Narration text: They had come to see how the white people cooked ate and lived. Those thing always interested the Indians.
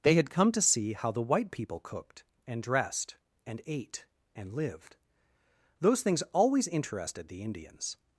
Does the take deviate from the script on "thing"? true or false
true